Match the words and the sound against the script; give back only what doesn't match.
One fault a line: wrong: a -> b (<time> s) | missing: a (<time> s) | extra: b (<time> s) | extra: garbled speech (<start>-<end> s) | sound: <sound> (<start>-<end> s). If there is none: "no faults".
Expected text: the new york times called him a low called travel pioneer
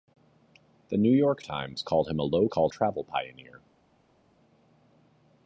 no faults